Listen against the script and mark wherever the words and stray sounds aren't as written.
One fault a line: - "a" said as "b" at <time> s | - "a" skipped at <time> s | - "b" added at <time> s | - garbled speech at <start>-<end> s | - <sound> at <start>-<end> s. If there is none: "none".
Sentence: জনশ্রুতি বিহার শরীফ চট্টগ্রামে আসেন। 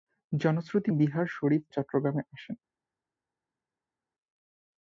none